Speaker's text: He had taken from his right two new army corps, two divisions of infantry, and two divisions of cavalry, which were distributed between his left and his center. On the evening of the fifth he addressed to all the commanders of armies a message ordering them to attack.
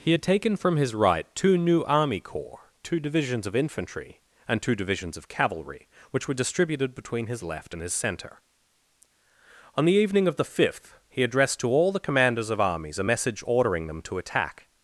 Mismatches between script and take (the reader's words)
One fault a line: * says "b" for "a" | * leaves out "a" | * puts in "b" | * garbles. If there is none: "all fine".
all fine